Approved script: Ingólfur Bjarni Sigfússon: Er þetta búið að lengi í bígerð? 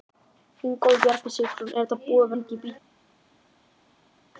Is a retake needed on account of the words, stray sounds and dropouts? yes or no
no